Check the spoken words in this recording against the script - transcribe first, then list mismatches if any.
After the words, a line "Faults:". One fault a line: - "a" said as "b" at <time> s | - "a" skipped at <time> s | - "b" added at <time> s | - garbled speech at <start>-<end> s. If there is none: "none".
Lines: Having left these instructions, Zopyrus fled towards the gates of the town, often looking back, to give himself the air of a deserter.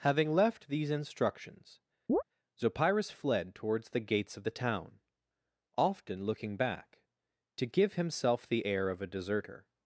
Having left these instructions, Zopyrus fled towards the gates of the town, often looking back, to give himself the air of a deserter.
Faults:
none